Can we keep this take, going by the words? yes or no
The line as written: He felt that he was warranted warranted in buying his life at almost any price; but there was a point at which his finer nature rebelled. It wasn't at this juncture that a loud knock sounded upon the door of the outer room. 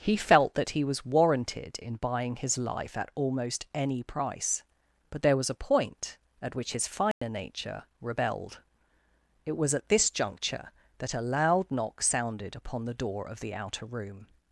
no